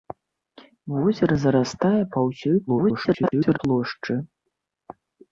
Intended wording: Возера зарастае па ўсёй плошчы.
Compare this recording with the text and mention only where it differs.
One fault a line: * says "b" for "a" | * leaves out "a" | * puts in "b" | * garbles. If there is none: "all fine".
* garbles